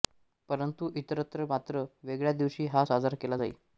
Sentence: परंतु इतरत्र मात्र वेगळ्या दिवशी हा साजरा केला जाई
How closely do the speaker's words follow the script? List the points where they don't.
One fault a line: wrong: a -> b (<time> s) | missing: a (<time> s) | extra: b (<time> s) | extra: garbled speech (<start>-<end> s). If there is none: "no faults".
no faults